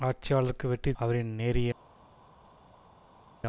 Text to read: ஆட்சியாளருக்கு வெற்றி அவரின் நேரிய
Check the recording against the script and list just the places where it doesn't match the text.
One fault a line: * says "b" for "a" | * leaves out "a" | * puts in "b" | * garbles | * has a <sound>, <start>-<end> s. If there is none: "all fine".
all fine